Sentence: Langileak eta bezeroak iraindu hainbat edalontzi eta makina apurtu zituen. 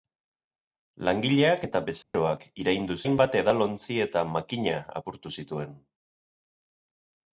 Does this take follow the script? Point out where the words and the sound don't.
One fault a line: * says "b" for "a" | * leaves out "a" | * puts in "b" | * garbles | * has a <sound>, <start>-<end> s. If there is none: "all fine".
* has a dropout, 2.0-2.1 s